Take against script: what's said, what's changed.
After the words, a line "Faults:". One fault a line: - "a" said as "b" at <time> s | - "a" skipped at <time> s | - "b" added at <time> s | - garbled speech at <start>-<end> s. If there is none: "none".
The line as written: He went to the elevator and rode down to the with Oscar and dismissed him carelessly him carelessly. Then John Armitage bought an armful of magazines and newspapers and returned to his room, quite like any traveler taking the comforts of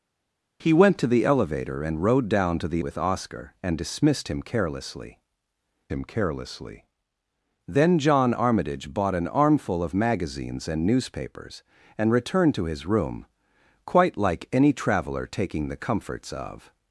He went to the elevator and rode down to the with Oscar and dismissed him carelessly him carelessly. Then John Armitage bought an armful of magazines and newspapers and returned to his room, quite like any traveler taking the comforts of
Faults:
none